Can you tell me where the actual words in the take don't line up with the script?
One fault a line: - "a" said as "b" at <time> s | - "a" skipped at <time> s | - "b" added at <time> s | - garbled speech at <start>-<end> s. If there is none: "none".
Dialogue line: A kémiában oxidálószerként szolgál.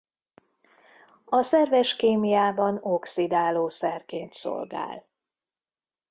- "szerves" added at 1.4 s